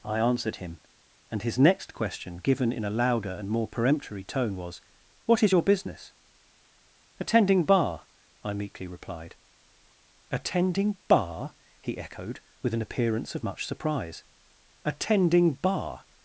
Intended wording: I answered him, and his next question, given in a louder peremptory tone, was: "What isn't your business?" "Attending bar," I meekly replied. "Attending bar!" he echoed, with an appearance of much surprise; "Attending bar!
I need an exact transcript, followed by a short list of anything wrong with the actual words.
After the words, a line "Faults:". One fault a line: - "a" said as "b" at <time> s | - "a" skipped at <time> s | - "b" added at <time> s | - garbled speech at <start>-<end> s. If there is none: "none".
I answered him, and his next question, given in a louder and more peremptory tone, was: "What is your business?" "Attending bar," I meekly replied. "Attending bar!" he echoed, with an appearance of much surprise; "Attending bar!
Faults:
- "and more" added at 3.3 s
- "isn't" said as "is" at 5.4 s